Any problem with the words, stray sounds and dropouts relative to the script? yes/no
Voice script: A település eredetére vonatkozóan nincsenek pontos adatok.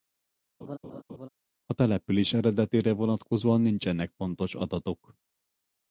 yes